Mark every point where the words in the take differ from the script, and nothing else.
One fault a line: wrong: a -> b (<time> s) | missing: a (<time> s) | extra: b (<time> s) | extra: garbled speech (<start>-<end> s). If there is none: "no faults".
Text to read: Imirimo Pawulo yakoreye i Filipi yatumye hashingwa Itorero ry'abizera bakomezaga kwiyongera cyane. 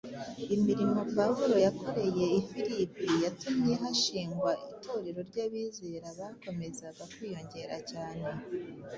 no faults